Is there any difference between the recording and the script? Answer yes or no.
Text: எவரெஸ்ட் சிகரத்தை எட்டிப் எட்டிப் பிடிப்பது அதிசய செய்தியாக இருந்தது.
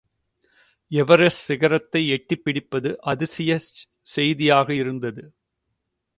yes